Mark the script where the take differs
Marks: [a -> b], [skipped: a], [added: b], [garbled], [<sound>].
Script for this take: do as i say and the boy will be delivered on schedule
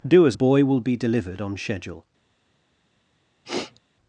do as [skipped: i say and] the boy will be delivered on schedule [sniff]